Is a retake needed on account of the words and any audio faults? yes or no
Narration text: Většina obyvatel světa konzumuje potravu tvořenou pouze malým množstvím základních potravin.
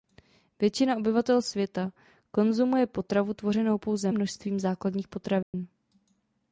yes